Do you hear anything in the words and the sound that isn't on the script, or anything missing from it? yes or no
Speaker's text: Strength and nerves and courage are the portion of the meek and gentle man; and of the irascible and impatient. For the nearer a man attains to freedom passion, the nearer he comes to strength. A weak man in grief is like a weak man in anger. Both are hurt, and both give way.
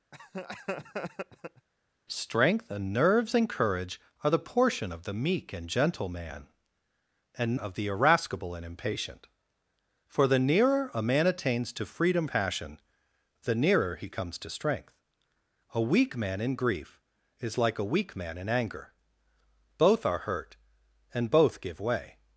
yes